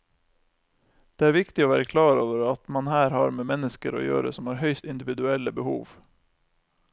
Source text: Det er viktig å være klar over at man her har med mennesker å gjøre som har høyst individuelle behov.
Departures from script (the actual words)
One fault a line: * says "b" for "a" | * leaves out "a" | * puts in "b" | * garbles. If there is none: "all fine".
all fine